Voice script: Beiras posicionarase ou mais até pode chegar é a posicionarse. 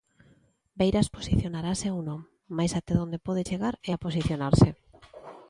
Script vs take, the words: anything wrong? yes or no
yes